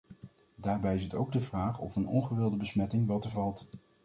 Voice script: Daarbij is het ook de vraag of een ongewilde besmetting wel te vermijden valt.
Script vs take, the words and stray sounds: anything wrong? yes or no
yes